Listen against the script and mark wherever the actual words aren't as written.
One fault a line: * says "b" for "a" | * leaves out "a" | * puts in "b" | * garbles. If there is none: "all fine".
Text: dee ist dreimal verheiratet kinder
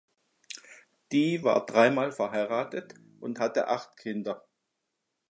* says "war" for "ist"
* puts in "und hatte acht"